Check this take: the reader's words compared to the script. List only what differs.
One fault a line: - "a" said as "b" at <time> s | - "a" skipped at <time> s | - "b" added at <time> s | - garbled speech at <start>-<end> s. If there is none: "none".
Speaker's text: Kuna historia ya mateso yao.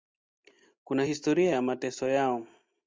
none